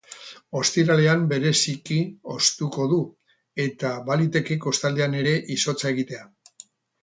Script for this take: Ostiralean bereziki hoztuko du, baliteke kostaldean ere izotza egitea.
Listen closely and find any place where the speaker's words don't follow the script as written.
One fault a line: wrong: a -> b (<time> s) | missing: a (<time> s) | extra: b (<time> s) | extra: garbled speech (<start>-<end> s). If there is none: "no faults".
extra: eta (3.7 s)